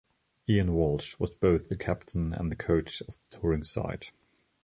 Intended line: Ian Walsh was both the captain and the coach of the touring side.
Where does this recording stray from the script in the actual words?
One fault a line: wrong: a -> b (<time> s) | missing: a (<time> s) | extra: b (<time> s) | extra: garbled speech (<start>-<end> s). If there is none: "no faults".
no faults